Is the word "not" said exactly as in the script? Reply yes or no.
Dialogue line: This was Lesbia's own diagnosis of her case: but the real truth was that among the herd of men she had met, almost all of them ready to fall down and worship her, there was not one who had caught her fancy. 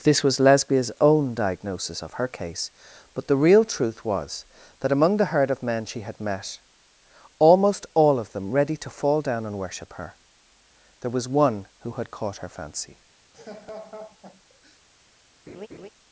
no